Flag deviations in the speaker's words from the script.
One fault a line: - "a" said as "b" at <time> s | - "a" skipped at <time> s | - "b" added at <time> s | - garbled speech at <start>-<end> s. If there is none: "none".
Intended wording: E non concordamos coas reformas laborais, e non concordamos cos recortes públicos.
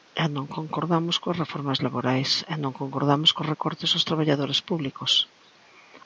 - "aos traballadores" added at 3.9 s